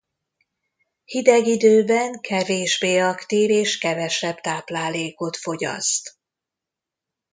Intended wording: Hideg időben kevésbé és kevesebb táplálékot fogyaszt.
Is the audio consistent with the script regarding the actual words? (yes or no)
no